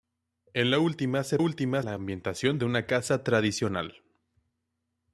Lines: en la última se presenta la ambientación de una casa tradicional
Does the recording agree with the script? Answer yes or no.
no